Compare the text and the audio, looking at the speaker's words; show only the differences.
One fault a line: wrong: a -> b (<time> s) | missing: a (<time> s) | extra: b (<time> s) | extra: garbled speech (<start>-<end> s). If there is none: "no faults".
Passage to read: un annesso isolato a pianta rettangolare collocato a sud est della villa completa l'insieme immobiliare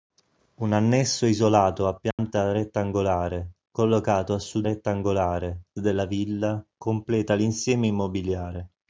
wrong: est -> rettangolare (4.6 s)